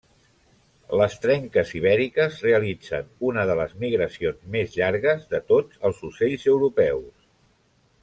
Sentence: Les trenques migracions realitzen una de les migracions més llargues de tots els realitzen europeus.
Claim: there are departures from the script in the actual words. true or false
true